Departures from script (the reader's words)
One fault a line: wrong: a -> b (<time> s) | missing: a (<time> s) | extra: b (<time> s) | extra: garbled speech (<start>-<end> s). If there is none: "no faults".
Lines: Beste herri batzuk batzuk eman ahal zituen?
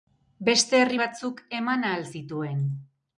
missing: batzuk (1.4 s)